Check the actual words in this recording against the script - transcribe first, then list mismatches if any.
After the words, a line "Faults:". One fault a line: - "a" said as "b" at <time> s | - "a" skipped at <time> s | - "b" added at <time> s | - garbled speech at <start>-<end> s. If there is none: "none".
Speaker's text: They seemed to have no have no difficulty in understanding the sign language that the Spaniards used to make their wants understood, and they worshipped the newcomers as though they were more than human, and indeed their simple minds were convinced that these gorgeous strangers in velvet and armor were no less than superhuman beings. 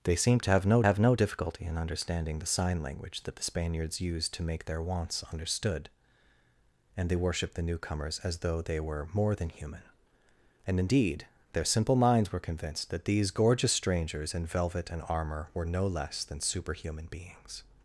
They seemed to have no have no difficulty in understanding the sign language that the Spaniards used to make their wants understood, and they worshipped the newcomers as though they were more than human, and indeed their simple minds were convinced that these gorgeous strangers in velvet and armor were no less than superhuman beings.
Faults:
none